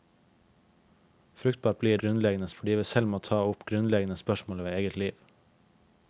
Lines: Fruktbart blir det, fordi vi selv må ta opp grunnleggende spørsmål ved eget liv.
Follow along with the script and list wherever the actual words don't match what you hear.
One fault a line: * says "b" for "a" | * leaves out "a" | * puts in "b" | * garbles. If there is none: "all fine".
* says "grunnleggende" for "det"